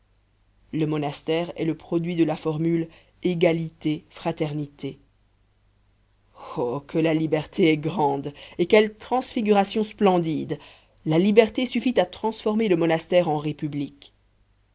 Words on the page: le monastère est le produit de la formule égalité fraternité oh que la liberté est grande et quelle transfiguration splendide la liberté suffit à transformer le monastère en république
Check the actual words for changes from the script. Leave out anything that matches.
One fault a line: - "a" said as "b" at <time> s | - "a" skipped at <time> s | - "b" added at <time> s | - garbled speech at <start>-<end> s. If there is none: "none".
none